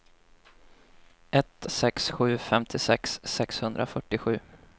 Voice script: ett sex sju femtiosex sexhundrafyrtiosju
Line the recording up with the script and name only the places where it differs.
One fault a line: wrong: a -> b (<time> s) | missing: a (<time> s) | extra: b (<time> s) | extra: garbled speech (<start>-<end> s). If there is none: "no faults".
no faults